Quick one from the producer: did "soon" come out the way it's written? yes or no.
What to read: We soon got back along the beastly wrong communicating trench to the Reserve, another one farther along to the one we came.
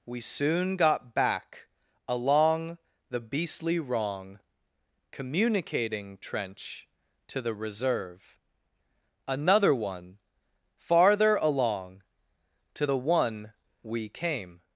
yes